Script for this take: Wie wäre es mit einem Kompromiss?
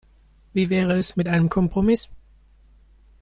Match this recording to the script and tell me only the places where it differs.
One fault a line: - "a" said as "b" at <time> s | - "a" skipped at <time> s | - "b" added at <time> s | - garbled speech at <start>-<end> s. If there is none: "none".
none